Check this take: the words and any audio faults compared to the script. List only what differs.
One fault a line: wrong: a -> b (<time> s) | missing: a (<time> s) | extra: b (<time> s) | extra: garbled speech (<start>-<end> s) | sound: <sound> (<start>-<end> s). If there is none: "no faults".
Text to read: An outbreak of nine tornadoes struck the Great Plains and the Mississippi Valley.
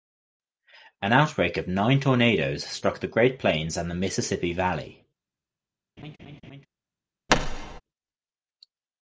sound: laugh (6.0-6.7 s)
sound: thud (7.3-7.8 s)